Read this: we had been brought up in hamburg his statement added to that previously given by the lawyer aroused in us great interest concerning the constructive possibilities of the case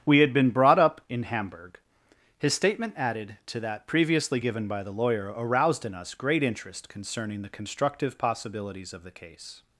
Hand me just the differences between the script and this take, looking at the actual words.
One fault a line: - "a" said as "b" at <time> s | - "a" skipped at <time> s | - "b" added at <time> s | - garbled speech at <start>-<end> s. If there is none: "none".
none